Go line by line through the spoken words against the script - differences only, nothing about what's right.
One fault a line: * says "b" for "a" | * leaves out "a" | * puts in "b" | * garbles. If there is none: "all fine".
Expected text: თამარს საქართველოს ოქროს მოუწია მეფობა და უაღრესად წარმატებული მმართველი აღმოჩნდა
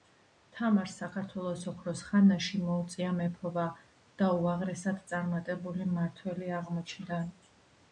* puts in "ხანაში"